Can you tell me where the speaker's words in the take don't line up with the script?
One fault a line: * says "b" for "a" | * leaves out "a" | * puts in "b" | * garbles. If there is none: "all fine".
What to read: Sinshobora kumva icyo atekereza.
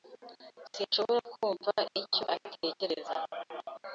all fine